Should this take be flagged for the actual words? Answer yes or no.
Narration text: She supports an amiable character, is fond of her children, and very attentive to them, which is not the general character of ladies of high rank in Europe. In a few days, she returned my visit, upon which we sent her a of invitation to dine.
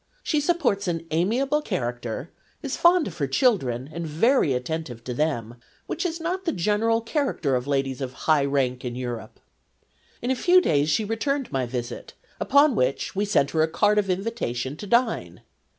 yes